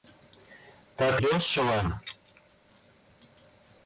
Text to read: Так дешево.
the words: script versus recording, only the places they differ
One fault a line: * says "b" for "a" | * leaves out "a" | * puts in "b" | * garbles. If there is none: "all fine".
all fine